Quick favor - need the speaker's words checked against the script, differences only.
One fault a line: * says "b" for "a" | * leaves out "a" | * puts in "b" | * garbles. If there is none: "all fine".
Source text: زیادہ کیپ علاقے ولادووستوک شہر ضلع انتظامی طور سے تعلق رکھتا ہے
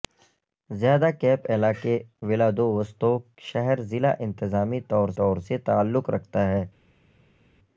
* puts in "طور"